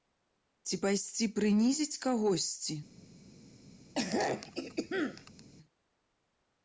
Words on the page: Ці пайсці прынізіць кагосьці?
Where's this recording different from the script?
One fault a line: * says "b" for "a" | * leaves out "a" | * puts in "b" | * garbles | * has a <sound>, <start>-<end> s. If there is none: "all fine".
* has a throat clearing, 4.0-5.4 s